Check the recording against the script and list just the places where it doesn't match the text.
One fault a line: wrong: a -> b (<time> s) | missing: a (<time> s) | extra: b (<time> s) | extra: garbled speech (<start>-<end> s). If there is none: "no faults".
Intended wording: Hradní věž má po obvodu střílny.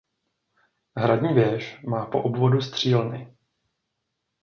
no faults